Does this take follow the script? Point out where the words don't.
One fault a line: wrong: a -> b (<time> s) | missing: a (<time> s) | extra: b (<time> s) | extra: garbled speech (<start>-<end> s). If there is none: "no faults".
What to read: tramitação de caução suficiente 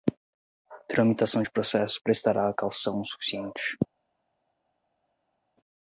extra: processo prestará (1.5 s)